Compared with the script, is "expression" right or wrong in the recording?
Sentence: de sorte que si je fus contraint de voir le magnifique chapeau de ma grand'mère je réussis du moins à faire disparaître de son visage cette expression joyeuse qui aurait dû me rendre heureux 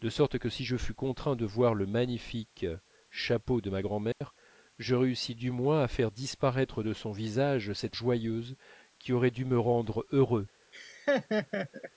wrong